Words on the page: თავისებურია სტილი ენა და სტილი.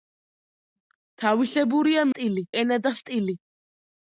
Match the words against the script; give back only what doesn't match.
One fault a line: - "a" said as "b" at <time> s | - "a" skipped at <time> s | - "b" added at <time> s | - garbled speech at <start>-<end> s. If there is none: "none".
none